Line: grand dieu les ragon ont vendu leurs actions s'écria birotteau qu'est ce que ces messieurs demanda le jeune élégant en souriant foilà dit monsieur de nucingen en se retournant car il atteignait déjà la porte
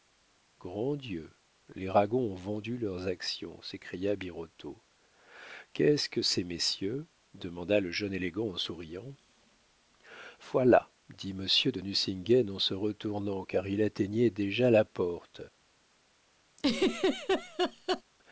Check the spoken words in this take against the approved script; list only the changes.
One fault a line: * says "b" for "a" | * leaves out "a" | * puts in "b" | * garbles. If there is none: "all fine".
all fine